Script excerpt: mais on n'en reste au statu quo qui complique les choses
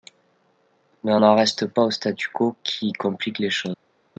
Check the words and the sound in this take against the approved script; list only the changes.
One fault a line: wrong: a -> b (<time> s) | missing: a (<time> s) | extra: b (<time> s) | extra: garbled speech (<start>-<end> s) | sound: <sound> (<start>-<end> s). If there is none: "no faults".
extra: pas (1.7 s)